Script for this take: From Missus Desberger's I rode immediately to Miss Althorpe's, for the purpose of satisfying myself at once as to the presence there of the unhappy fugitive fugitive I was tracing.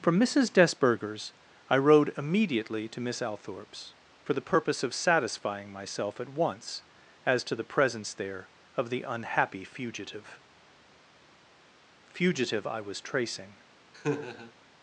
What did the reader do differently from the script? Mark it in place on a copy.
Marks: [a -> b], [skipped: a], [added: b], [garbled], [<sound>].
From Missus Desberger's I rode immediately to Miss Althorpe's, for the purpose of satisfying myself at once as to the presence there of the unhappy fugitive fugitive I was tracing. [laugh]